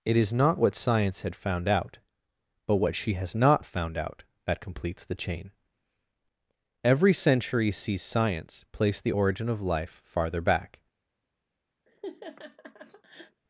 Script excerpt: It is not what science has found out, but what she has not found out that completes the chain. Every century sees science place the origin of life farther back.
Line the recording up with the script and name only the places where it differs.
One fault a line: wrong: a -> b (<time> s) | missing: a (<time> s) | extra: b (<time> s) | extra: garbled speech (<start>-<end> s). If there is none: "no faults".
wrong: has -> had (1.2 s)